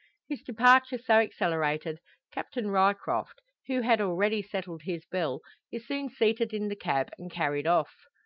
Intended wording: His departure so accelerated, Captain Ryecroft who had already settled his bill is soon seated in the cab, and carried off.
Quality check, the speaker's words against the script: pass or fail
pass